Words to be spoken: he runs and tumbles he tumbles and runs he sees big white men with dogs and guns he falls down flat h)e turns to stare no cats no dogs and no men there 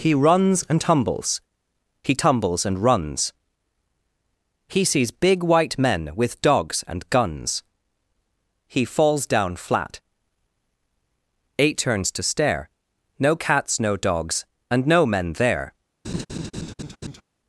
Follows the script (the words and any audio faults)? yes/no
no